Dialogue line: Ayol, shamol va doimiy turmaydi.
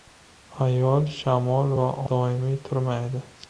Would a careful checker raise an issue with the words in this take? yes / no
no